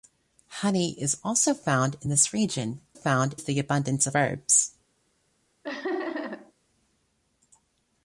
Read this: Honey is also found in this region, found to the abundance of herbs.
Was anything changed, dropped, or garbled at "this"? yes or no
no